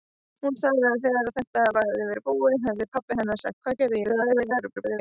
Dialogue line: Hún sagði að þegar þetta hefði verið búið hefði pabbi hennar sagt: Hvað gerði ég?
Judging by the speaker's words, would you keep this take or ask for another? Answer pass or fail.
fail